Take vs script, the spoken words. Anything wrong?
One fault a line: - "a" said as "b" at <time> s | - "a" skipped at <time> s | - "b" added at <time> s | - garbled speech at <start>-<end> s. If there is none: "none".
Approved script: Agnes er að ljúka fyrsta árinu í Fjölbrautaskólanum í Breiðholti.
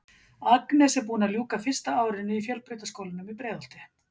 - "búin" added at 1.1 s